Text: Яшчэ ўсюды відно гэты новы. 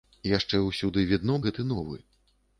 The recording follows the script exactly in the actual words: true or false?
true